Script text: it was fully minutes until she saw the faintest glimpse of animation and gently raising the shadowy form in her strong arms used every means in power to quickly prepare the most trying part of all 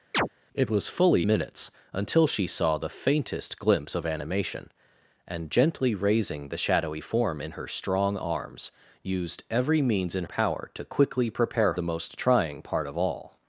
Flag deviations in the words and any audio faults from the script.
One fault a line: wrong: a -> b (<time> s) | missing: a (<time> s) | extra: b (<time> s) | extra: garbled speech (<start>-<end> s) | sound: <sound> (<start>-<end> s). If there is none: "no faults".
sound: chirp (0.1-0.3 s)